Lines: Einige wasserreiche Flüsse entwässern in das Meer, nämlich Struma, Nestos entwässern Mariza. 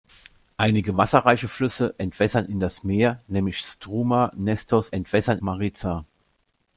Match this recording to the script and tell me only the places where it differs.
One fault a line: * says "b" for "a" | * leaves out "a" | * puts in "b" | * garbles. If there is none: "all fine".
all fine